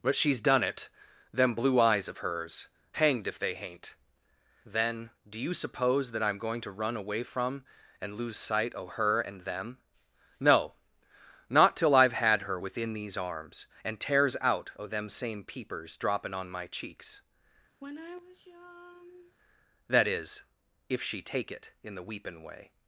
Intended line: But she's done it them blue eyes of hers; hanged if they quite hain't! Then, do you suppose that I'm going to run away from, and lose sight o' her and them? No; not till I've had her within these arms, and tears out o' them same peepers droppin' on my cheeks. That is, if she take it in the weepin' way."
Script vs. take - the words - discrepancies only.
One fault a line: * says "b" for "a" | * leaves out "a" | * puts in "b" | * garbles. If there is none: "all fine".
* leaves out "quite"